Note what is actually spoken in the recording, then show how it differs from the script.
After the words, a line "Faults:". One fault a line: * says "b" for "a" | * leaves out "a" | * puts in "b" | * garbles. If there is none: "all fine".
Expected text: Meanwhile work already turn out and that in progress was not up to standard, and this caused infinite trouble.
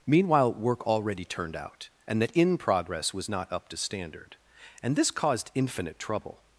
Meanwhile work already turned out and that in progress was not up to standard, and this caused infinite trouble.
Faults:
* says "turned" for "turn"